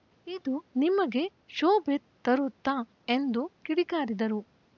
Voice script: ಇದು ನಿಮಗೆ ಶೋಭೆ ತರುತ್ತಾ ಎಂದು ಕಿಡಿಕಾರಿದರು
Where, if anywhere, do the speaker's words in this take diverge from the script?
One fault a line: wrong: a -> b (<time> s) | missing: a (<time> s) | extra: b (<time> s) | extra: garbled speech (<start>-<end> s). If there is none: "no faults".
no faults